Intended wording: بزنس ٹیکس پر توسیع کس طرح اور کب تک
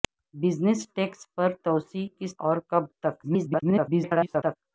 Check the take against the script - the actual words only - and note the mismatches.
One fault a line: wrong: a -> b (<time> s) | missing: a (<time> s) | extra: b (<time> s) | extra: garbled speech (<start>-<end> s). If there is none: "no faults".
missing: طرح (2.3 s)
extra: garbled speech (3.2-4.6 s)